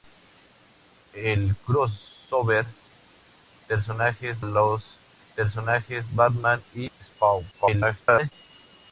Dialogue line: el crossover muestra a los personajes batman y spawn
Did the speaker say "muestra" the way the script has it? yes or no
no